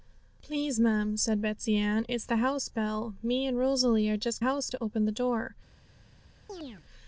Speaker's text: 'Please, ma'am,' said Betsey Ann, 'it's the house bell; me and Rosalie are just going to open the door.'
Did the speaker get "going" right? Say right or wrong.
wrong